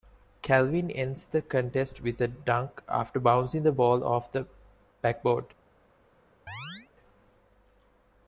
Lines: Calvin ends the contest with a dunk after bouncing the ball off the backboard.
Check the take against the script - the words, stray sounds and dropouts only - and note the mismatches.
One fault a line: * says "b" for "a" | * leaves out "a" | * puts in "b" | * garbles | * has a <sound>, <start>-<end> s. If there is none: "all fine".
* has a chirp, 6.5-6.9 s